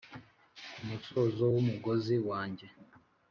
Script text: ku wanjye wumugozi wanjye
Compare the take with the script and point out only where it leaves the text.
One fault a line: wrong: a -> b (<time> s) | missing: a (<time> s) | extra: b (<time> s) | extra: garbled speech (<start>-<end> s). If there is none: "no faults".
wrong: wanjye -> musozo (0.9 s)